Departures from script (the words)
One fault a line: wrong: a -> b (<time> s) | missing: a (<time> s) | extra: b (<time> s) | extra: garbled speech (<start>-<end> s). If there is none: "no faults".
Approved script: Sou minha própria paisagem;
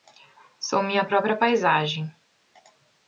no faults